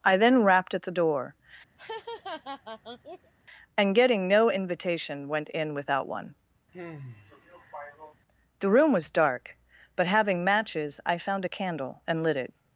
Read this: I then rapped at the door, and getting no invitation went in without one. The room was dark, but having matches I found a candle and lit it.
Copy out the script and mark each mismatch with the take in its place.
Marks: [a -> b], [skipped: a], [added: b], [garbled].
I then rapped at the door, and getting no invitation went in without one. The room was dark, but having matches I found a candle and lit it.